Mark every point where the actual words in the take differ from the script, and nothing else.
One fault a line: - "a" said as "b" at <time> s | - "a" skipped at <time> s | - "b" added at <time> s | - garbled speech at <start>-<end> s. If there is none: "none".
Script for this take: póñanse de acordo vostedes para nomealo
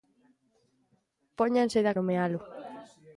- "acordo vostedes para" skipped at 1.9 s